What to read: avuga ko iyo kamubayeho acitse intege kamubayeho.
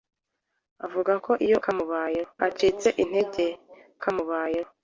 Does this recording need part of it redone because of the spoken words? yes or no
no